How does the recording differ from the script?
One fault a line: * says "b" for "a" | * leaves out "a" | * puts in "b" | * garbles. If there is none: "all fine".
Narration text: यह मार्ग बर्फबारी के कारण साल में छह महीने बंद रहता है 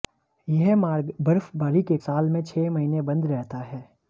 * leaves out "कारण"